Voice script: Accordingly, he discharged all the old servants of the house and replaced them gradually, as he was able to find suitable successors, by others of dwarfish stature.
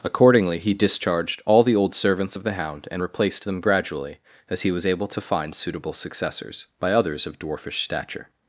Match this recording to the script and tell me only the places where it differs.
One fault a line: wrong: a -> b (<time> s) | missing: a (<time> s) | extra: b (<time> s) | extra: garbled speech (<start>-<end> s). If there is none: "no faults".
wrong: house -> hound (2.5 s)